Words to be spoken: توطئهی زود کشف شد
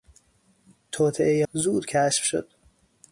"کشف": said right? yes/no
yes